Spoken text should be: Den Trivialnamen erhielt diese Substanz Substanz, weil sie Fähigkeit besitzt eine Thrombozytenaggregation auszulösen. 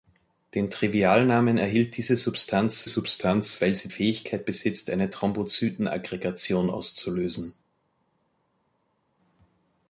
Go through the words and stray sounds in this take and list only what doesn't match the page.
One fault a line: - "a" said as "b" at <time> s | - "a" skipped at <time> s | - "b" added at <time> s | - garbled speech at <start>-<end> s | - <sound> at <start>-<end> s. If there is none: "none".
none